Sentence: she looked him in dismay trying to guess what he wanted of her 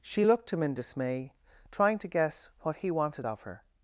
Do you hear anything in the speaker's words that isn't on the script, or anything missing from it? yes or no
no